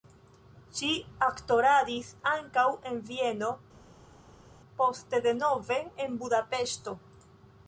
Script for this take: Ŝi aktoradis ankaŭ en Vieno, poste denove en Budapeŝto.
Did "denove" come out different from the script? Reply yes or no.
no